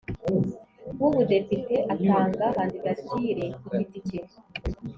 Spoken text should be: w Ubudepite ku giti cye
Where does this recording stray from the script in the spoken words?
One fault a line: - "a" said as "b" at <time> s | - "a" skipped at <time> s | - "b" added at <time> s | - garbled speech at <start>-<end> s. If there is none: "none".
- "atanga kandidatire" added at 1.9 s